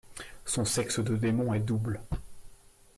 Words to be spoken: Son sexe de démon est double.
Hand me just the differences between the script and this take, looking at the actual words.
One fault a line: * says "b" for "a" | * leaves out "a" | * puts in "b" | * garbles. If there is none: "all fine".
all fine